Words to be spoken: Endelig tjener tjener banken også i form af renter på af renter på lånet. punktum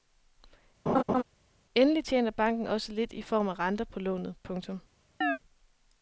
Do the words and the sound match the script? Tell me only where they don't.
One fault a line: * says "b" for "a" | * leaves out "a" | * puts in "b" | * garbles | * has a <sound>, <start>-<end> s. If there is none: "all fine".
* has a laugh, 0.9-1.2 s
* leaves out "tjener"
* puts in "lidt"
* leaves out "af renter på"
* has a chirp, 5.2-5.4 s